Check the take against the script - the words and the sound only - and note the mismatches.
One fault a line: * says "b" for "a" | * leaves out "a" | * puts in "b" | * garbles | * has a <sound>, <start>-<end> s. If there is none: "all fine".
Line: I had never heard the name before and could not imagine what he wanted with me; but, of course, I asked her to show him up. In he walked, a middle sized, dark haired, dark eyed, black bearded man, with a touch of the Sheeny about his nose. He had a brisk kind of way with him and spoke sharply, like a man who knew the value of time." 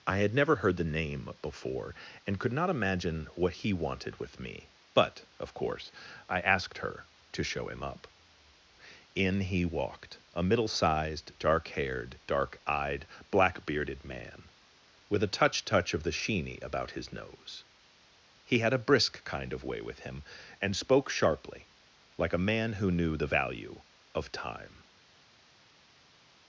* puts in "touch"